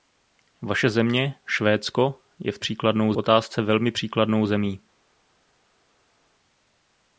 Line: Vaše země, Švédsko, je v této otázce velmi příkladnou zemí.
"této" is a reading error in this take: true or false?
true